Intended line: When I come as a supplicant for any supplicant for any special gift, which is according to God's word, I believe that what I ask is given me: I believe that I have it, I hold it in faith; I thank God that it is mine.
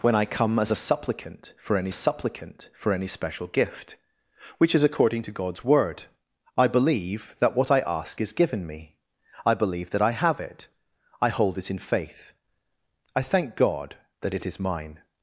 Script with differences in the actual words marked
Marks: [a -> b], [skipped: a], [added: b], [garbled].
When I come as a supplicant for any supplicant for any special gift, which is according to God's word, I believe that what I ask is given me: I believe that I have it, I hold it in faith; I thank God that it is mine.